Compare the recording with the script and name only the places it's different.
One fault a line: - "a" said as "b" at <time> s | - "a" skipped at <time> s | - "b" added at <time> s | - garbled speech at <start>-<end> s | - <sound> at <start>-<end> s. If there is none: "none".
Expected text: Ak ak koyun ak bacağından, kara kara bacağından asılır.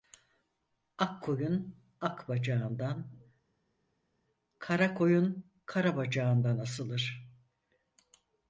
- "ak" skipped at 1.2 s
- "koyun" added at 4.9 s